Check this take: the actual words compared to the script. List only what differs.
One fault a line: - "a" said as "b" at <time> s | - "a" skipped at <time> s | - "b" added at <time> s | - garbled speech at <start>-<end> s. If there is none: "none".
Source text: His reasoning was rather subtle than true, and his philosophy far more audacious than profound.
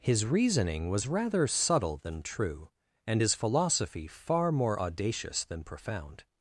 none